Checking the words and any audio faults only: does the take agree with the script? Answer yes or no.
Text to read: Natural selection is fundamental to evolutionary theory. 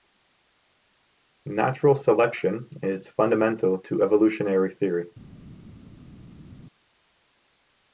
yes